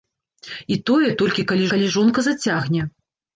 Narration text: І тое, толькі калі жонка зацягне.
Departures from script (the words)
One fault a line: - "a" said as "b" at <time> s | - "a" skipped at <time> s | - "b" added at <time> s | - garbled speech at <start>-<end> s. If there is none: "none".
- "калі" added at 1.7 s